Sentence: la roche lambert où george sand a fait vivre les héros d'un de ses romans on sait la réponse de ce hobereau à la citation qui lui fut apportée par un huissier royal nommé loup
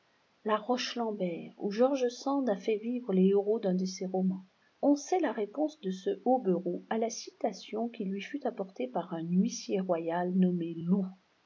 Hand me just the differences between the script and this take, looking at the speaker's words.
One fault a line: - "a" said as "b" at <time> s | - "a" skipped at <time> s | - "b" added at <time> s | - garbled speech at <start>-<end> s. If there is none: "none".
none